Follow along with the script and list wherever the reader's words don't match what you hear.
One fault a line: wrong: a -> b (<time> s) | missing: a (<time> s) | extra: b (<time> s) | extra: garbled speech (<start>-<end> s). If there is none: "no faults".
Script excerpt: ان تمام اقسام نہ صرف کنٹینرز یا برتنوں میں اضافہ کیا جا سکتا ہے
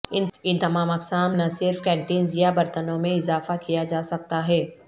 no faults